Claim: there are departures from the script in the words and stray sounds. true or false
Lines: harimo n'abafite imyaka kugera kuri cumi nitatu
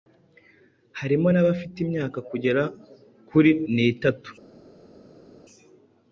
true